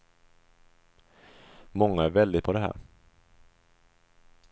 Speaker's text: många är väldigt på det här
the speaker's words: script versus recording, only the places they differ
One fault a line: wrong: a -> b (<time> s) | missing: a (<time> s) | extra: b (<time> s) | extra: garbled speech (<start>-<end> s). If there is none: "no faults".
no faults